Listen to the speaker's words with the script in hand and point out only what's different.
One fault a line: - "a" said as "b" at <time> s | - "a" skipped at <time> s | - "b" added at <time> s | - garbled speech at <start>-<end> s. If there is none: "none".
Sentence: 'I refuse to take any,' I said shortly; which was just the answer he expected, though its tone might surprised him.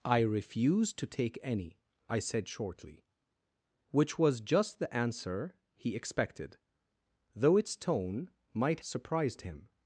none